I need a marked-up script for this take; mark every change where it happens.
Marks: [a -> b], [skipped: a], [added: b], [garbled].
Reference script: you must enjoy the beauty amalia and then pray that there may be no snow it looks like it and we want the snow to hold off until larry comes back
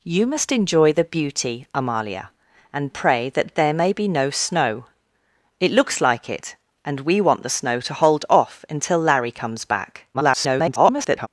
you must enjoy the beauty amalia and [skipped: then] pray that there may be no snow it looks like it and we want the snow to hold off until larry comes back [garbled]